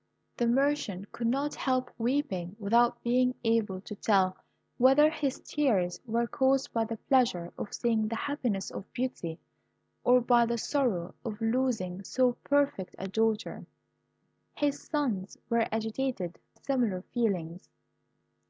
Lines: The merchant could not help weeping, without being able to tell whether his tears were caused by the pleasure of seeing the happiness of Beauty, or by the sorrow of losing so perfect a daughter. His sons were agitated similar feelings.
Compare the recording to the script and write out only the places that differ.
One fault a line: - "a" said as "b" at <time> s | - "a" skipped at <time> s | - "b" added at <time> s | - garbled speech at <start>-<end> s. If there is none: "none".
none